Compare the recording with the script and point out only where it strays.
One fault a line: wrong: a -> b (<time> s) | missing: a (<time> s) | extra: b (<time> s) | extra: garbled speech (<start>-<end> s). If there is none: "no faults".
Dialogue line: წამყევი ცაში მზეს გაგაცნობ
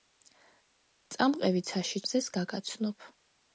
no faults